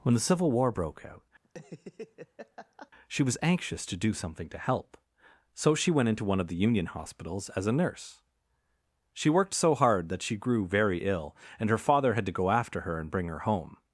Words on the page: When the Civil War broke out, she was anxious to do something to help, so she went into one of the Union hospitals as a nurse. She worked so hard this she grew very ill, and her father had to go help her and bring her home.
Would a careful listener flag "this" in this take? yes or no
yes